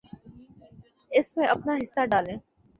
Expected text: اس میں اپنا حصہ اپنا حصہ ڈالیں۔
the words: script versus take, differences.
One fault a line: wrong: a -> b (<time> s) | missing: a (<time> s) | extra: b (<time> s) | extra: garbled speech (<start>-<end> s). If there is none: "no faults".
missing: اپنا حصہ (2.0 s)